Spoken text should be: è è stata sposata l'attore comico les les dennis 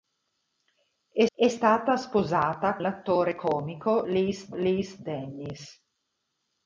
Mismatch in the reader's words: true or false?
false